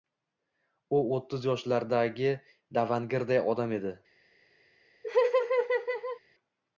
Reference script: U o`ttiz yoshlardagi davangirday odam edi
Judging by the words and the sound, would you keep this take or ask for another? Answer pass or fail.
fail